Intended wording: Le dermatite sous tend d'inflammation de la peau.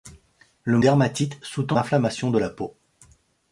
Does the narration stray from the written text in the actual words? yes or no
no